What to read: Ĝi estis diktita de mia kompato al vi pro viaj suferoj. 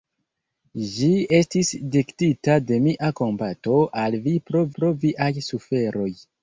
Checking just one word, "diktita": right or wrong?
right